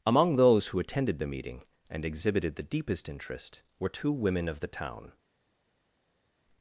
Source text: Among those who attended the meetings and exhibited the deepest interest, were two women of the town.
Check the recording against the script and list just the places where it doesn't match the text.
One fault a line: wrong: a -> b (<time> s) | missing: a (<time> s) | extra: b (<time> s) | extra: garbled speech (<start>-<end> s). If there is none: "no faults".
wrong: meetings -> meeting (1.3 s)